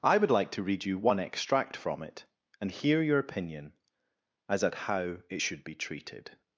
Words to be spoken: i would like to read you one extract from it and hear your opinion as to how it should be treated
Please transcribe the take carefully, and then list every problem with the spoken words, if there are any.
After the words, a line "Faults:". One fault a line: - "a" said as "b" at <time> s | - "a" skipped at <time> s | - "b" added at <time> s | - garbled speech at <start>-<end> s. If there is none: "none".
i would like to read you one extract from it and hear your opinion as at how it should be treated
Faults:
- "to" said as "at" at 4.6 s